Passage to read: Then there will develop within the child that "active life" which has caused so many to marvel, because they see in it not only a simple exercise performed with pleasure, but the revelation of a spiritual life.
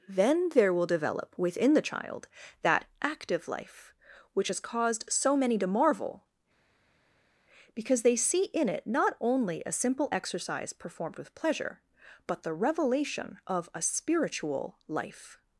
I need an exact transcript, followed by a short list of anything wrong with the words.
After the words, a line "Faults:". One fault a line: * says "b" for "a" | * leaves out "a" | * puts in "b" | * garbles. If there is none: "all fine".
Then there will develop within the child that "active life" which has caused so many to marvel, because they see in it not only a simple exercise performed with pleasure, but the revelation of a spiritual life.
Faults:
all fine